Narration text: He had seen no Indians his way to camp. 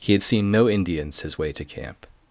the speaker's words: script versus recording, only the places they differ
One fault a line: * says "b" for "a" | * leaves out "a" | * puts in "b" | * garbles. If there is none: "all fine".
all fine